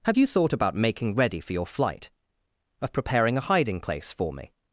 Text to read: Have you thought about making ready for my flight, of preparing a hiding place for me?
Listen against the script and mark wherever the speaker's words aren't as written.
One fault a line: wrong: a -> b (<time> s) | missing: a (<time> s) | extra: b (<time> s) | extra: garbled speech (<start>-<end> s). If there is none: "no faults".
wrong: my -> your (1.5 s)